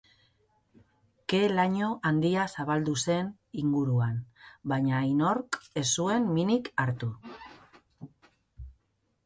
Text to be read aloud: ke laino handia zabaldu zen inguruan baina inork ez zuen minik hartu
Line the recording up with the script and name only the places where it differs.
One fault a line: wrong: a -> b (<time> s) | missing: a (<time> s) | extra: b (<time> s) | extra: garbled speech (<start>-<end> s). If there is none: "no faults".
no faults